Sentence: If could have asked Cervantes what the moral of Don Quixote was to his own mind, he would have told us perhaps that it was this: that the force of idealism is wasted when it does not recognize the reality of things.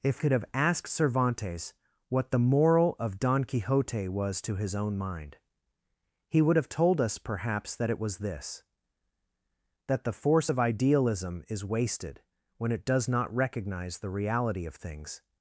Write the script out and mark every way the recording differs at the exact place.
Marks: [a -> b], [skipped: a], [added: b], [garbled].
If could have asked Cervantes what the moral of Don Quixote was to his own mind, he would have told us perhaps that it was this: that the force of idealism is wasted when it does not recognize the reality of things.